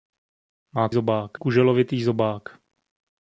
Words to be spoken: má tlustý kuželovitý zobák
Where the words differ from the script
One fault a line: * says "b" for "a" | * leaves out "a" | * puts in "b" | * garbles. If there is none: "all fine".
* says "zobák" for "tlustý"